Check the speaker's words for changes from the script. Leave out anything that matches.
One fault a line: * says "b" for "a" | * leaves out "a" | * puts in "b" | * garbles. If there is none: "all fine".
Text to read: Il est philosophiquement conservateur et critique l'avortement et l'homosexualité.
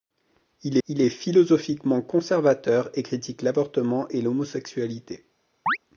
* puts in "il"